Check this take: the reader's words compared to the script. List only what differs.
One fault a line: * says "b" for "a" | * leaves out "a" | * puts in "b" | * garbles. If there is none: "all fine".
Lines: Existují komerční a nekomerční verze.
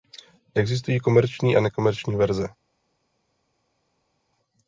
all fine